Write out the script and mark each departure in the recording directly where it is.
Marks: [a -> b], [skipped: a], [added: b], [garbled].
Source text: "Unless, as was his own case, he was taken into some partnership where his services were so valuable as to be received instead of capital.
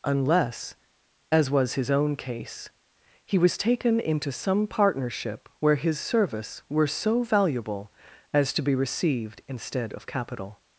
"Unless, as was his own case, he was taken into some partnership where his [services -> service] were so valuable as to be received instead of capital.